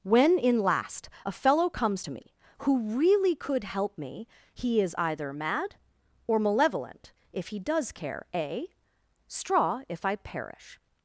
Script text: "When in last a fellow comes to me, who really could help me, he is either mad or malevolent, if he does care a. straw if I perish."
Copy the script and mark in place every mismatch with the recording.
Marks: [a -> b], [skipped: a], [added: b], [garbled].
"When in last a fellow comes to me, who really could help me, he is either mad or malevolent, if he does care a. straw if I perish."